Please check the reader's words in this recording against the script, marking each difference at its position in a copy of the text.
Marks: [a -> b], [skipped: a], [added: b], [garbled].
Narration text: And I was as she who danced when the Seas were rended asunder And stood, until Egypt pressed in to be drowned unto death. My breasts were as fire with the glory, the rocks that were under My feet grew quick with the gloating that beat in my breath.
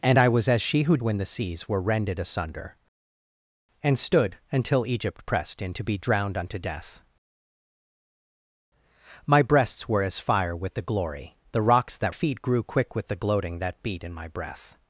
And I was as she who [skipped: danced] when the Seas were rended asunder And stood, until Egypt pressed in to be drowned unto death. My breasts were as fire with the glory, the rocks that [skipped: were under My] feet grew quick with the gloating that beat in my breath.